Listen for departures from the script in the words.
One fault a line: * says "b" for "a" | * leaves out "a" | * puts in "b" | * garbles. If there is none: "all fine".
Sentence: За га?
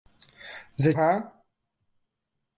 all fine